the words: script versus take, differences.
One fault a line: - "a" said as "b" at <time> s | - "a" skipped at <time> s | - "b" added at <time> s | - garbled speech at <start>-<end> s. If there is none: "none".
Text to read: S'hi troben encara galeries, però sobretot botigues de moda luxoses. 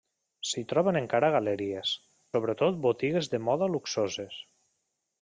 - "però" skipped at 1.9 s